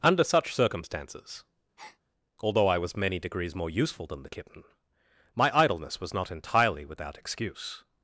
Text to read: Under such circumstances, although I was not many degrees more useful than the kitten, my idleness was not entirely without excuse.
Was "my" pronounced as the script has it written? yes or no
yes